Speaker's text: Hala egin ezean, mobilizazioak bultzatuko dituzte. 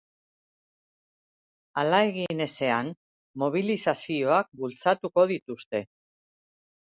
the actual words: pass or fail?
pass